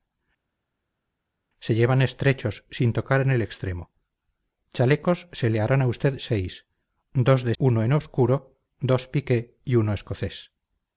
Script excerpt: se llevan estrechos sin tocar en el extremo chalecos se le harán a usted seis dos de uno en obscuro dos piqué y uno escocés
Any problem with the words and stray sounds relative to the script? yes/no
no